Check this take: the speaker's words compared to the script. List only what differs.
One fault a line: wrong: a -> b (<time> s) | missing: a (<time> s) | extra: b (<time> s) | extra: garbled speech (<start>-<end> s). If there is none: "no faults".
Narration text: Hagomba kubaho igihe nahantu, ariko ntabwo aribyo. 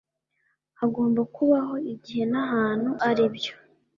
missing: ariko ntabwo (2.9 s)